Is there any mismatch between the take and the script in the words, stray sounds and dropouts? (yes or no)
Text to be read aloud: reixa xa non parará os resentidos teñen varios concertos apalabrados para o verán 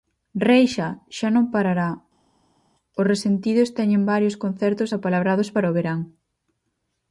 no